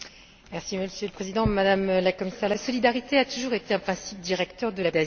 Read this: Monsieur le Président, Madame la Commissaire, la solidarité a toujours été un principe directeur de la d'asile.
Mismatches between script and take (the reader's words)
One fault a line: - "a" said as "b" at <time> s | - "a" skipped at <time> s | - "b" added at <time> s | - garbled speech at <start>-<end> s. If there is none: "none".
none